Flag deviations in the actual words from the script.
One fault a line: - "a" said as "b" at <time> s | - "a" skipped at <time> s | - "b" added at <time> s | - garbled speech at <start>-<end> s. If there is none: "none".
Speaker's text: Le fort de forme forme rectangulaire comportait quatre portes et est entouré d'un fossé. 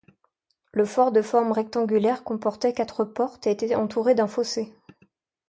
- "forme" skipped at 1.5 s
- "est" said as "était" at 3.5 s